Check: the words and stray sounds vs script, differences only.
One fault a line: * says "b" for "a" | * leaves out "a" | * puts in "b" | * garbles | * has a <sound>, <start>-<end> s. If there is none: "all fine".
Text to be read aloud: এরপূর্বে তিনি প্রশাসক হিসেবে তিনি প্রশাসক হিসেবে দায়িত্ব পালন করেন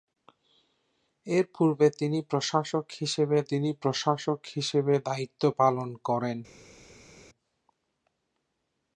all fine